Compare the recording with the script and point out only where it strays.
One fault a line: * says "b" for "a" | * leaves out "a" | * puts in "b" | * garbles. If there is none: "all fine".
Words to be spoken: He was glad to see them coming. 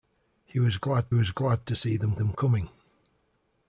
* puts in "was glad"
* puts in "them"